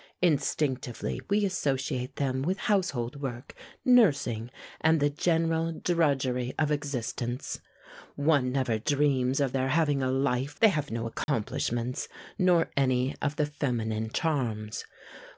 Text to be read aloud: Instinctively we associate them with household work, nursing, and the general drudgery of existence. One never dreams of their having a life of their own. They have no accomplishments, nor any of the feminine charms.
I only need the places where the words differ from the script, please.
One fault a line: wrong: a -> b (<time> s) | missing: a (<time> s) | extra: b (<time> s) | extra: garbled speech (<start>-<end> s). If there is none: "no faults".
missing: of their own (10.6 s)